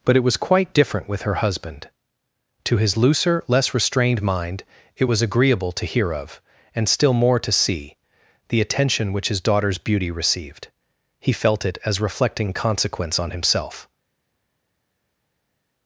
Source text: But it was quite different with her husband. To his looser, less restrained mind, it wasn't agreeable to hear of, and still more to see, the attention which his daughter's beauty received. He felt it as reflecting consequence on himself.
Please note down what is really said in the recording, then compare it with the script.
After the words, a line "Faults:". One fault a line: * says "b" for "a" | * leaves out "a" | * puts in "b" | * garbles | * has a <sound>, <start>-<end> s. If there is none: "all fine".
But it was quite different with her husband. To his looser, less restrained mind, it was agreeable to hear of, and still more to see, the attention which his daughter's beauty received. He felt it as reflecting consequence on himself.
Faults:
* says "was" for "wasn't"